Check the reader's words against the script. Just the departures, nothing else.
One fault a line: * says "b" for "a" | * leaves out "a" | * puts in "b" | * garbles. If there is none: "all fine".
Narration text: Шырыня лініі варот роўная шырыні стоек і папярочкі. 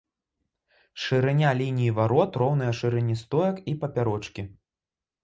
all fine